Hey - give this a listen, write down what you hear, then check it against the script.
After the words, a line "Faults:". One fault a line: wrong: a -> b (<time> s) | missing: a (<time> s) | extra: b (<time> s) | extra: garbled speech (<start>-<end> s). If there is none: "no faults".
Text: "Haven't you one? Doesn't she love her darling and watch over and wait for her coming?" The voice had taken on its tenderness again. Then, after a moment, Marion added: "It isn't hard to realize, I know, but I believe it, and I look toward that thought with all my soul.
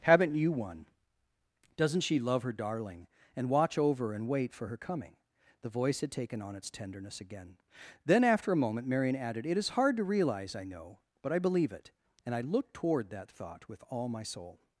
"Haven't you one? Doesn't she love her darling and watch over and wait for her coming?" The voice had taken on its tenderness again. Then, after a moment, Marion added: "It is hard to realize, I know, but I believe it, and I look toward that thought with all my soul.
Faults:
wrong: isn't -> is (9.6 s)